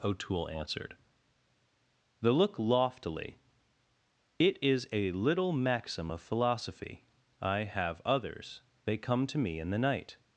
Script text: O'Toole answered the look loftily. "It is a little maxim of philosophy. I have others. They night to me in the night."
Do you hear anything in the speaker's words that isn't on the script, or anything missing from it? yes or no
yes